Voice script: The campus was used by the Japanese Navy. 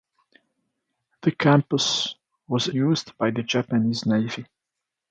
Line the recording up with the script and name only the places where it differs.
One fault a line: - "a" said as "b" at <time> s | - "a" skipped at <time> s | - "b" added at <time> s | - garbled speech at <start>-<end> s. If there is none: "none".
none